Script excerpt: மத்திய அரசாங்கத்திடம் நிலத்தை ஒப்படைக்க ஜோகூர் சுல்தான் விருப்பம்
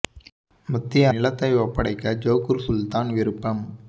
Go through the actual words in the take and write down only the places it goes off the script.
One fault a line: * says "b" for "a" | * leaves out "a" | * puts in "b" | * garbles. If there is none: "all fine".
* leaves out "அரசாங்கத்திடம்"